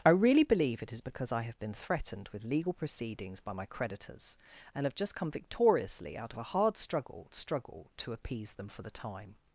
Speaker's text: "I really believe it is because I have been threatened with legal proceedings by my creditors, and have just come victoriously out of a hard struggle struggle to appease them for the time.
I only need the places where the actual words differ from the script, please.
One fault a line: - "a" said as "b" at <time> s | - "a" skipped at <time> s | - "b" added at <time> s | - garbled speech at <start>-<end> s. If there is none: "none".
none